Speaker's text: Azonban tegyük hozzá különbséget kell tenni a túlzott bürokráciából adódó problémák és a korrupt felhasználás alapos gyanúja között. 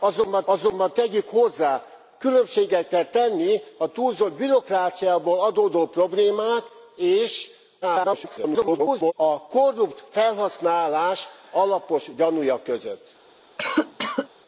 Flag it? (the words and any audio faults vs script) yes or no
yes